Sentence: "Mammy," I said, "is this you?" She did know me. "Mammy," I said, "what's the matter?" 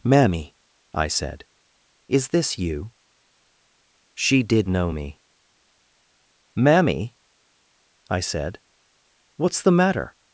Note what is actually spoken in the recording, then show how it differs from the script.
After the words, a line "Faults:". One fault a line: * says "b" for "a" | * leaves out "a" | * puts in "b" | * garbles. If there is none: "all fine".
"Mammy," I said, "is this you?" She did know me. "Mammy," I said, "what's the matter?"
Faults:
all fine